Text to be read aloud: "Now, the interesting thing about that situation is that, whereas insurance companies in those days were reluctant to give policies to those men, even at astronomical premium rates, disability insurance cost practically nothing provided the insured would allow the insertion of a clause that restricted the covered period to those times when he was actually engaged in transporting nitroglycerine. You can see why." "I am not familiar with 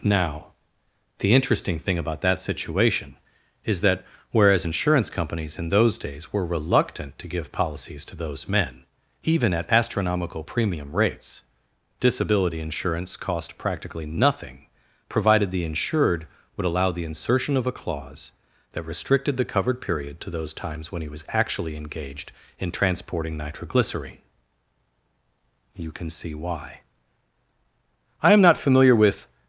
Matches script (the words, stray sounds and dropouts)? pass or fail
pass